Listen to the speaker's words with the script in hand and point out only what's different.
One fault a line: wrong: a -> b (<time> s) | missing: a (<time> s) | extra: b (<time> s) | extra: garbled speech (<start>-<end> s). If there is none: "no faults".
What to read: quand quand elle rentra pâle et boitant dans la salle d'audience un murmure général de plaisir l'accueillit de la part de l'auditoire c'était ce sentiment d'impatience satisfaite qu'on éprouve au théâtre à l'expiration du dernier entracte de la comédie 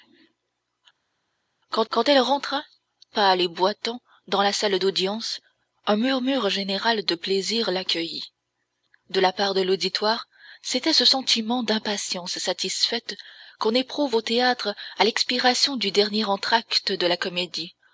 no faults